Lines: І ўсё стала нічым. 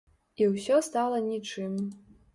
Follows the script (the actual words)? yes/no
yes